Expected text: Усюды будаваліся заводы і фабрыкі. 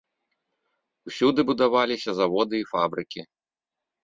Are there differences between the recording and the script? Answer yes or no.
no